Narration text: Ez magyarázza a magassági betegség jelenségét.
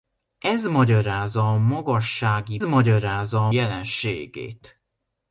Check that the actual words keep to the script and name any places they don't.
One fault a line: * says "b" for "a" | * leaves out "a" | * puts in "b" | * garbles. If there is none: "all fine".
* says "magyarázza" for "betegség"